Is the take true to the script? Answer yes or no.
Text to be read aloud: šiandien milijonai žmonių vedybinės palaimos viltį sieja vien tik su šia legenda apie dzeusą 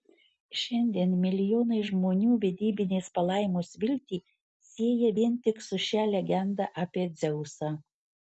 yes